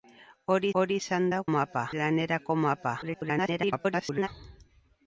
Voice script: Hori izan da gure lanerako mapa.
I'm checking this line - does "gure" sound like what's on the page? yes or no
no